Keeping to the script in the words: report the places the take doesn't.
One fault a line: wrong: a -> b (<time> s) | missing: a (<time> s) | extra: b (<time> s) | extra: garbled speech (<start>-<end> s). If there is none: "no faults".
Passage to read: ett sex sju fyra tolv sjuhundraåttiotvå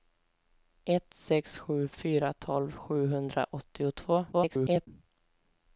extra: garbled speech (4.3-4.9 s)